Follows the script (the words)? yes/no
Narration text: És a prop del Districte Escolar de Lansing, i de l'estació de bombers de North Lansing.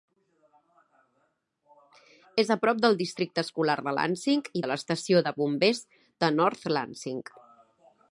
yes